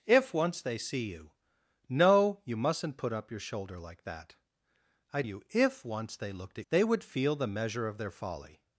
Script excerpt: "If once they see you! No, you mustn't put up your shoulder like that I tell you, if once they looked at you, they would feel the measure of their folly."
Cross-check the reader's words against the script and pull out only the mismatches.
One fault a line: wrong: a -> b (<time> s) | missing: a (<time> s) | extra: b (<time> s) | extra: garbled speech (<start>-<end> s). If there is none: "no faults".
missing: tell (5.2 s)
missing: you (6.7 s)